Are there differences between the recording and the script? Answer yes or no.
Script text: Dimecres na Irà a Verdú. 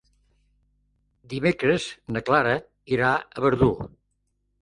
yes